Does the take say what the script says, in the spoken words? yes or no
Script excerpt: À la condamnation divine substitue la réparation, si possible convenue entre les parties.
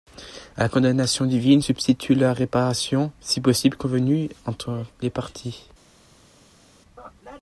yes